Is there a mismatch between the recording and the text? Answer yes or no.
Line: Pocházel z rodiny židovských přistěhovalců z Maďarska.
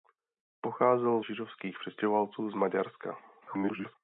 yes